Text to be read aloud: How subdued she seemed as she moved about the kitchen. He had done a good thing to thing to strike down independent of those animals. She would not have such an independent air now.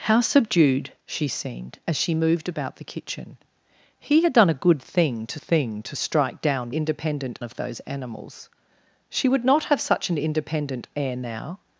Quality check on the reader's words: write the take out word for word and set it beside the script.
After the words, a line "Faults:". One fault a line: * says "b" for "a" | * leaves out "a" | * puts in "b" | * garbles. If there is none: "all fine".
How subdued she seemed as she moved about the kitchen. He had done a good thing to thing to strike down independent of those animals. She would not have such an independent air now.
Faults:
all fine